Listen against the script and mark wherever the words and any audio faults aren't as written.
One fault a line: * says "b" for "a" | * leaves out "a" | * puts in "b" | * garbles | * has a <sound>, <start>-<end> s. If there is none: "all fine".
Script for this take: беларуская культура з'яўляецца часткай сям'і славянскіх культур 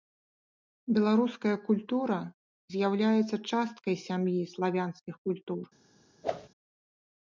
* has a whoosh, 6.2-6.5 s